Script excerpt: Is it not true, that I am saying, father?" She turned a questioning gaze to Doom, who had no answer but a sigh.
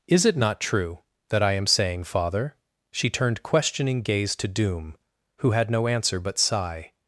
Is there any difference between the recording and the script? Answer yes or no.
yes